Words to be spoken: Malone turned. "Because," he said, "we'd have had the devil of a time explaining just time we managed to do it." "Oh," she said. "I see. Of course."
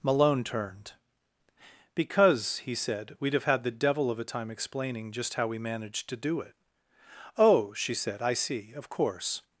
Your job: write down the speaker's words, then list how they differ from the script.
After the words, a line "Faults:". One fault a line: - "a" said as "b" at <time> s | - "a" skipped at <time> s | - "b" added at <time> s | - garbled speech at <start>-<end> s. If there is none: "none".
Malone turned. "Because," he said, "we'd have had the devil of a time explaining just how we managed to do it." "Oh," she said. "I see. Of course."
Faults:
- "time" said as "how" at 5.3 s